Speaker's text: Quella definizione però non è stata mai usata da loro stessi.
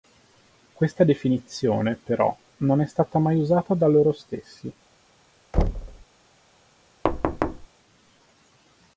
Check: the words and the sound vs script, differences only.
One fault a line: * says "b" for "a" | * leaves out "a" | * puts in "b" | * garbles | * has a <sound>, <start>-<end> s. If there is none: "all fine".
* says "Questa" for "Quella"
* has a thud, 5.5-6.0 s
* has a thud, 7.0-7.7 s